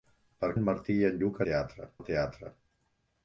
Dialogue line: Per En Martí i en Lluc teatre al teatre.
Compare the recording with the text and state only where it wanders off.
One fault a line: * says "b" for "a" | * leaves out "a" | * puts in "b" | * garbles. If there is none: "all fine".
all fine